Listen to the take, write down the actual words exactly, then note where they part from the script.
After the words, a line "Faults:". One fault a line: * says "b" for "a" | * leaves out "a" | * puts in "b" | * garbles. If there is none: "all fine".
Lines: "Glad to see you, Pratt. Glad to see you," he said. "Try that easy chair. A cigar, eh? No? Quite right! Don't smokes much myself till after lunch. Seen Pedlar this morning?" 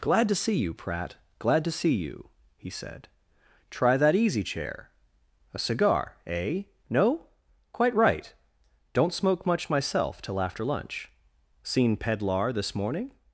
"Glad to see you, Pratt. Glad to see you," he said. "Try that easy chair. A cigar, eh? No? Quite right! Don't smoke much myself till after lunch. Seen Pedlar this morning?"
Faults:
* says "smoke" for "smokes"